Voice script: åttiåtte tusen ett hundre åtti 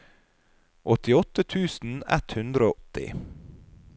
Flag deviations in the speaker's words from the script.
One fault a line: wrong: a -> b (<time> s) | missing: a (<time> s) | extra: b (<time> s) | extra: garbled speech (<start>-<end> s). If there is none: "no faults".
no faults